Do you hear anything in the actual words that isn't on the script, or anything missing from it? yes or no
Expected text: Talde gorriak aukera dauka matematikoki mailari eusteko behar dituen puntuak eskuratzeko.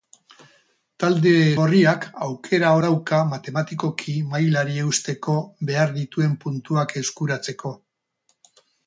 no